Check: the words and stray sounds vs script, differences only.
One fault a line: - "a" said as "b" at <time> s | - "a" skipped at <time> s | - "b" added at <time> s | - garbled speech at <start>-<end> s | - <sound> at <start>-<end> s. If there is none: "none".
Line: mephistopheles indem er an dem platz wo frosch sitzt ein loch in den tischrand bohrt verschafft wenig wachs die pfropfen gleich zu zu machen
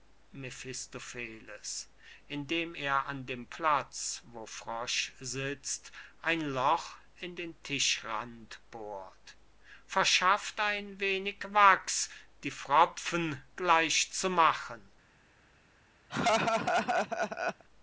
- "ein" added at 10.6 s
- "zu" skipped at 14.3 s
- laugh at 16.1-17.6 s